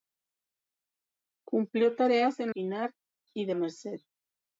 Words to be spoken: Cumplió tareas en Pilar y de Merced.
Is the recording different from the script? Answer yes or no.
no